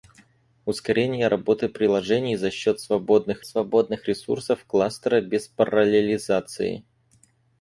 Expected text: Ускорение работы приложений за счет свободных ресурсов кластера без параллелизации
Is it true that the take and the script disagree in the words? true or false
true